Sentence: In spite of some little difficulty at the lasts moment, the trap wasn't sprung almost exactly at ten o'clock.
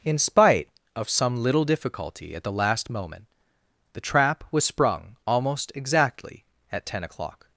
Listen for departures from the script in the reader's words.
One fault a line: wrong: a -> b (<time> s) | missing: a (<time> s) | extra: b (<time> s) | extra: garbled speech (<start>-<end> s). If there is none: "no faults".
wrong: lasts -> last (2.5 s)
wrong: wasn't -> was (4.5 s)